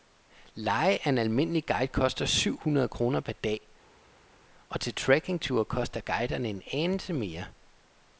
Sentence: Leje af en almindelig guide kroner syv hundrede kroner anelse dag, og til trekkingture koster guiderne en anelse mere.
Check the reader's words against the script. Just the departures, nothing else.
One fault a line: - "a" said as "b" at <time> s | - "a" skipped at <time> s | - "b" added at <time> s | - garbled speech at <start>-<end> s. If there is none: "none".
- "kroner" said as "koster" at 1.9 s
- "anelse" said as "per" at 3.2 s